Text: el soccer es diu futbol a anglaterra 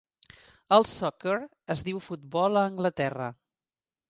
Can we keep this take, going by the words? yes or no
yes